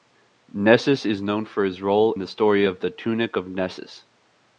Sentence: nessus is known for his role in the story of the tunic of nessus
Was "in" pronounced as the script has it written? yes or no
no